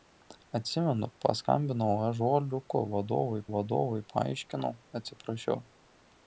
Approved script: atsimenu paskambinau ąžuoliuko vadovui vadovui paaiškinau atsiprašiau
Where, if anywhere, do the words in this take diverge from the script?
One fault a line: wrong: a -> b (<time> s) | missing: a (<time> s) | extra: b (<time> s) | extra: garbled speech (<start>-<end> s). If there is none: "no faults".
no faults